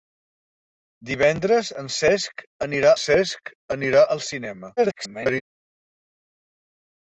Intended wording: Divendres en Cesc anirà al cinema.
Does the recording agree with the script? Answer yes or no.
no